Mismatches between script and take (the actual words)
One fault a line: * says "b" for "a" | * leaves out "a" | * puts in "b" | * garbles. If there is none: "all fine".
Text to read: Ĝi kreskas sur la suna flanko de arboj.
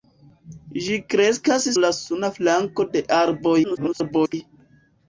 * leaves out "sur"
* garbles